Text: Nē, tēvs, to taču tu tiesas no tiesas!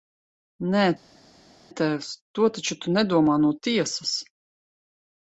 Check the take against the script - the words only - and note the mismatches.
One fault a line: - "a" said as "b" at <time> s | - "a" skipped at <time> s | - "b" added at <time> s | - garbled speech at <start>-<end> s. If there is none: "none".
- "tiesas" said as "nedomā" at 3.0 s